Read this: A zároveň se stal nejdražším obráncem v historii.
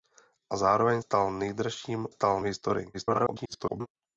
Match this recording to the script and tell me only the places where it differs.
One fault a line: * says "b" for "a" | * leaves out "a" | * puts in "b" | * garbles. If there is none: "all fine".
* leaves out "se"
* says "stal" for "obráncem"
* garbles